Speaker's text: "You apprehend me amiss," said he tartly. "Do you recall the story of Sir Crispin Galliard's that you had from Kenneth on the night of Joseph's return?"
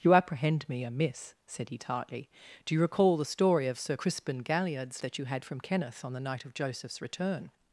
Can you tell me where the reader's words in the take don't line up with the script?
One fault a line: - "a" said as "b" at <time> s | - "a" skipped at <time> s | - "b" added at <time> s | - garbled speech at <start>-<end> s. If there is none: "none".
none